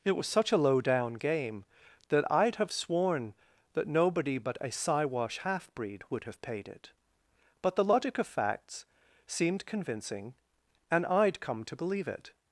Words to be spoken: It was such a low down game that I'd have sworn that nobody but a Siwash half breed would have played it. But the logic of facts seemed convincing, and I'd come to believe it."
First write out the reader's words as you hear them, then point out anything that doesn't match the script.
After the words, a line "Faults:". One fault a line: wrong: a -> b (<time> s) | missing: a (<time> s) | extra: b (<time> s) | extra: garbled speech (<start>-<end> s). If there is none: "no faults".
It was such a low down game that I'd have sworn that nobody but a Siwash half breed would have paid it. But the logic of facts seemed convincing, and I'd come to believe it."
Faults:
wrong: played -> paid (6.4 s)